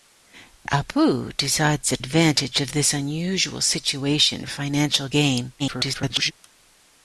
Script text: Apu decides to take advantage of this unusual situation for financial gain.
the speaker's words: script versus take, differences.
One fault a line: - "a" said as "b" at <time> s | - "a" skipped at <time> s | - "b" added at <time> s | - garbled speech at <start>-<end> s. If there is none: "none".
- "take" skipped at 2.0 s
- "for" skipped at 4.4 s
- garbled speech at 5.6-6.3 s